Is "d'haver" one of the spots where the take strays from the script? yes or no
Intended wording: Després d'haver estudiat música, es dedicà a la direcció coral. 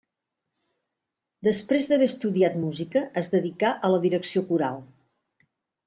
no